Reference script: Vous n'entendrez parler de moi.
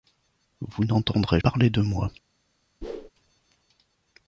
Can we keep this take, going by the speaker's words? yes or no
yes